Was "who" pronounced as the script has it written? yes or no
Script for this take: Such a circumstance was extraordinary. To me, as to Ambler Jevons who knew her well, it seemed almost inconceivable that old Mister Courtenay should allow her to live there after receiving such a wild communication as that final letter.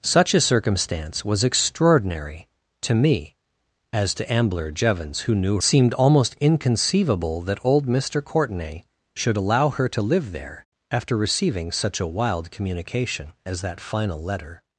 yes